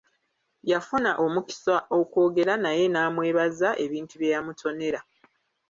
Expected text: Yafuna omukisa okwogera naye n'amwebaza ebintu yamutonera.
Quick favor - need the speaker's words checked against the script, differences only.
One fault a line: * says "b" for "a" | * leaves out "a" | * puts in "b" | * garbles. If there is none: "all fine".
* puts in "bye"